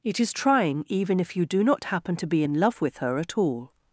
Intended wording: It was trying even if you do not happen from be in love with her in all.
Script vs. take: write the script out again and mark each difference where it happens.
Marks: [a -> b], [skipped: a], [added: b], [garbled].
It [was -> is] trying even if you do not happen [from -> to] be in love with her [in -> at] all.